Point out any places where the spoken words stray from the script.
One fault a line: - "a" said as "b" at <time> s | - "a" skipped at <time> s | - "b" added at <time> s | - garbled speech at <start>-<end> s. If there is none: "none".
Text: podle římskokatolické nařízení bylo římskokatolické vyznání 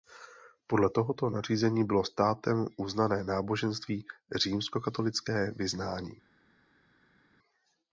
- "římskokatolické" said as "tohoto" at 0.9 s
- "státem uznané náboženství" added at 2.0 s